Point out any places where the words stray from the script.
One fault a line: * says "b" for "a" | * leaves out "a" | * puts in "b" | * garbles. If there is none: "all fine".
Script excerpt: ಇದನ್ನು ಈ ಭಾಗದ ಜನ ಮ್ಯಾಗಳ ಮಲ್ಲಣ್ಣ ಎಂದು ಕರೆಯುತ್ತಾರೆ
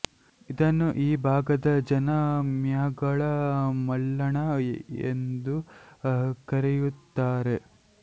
all fine